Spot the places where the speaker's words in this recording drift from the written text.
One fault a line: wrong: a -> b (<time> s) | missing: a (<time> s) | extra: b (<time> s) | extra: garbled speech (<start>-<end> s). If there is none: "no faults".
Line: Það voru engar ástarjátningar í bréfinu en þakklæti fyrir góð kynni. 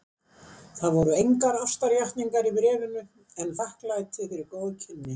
no faults